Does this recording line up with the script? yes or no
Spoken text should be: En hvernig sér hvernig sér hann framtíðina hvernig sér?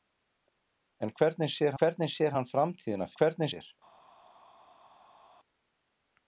yes